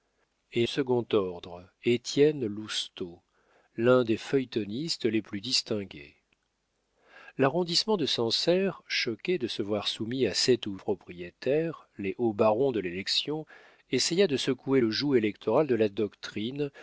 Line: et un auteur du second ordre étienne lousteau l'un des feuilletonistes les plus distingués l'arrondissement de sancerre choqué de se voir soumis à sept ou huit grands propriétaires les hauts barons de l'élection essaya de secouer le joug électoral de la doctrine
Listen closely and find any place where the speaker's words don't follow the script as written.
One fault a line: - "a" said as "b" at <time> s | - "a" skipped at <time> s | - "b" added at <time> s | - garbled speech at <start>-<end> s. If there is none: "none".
- "un auteur du" skipped at 0.7 s
- "huit grands" skipped at 10.8 s